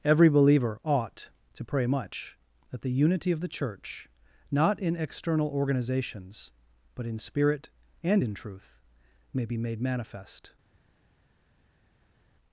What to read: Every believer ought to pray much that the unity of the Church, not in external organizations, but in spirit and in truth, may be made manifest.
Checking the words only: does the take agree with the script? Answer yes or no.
yes